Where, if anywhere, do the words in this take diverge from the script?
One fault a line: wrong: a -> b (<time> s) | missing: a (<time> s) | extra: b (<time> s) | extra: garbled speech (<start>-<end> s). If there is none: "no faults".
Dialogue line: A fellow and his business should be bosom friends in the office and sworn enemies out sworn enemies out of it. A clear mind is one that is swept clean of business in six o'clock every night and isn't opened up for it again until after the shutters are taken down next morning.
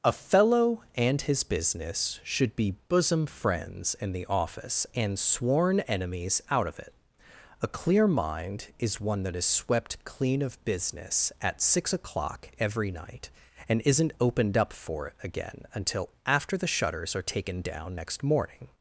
missing: sworn enemies out (6.7 s)
wrong: in -> at (11.4 s)